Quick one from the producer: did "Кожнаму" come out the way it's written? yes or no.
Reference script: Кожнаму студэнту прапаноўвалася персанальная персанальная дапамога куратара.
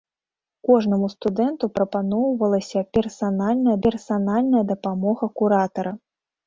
yes